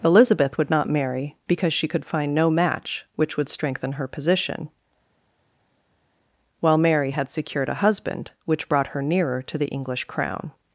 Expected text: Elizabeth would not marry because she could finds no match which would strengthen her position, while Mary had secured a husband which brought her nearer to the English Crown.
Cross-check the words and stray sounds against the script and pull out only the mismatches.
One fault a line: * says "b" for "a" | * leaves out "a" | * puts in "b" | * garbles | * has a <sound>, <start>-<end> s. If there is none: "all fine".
* says "find" for "finds"